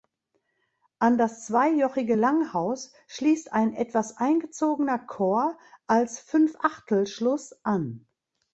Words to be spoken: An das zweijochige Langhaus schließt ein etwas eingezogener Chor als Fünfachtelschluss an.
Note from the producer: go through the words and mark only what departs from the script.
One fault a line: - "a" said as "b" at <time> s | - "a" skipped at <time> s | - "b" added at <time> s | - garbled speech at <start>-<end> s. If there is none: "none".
none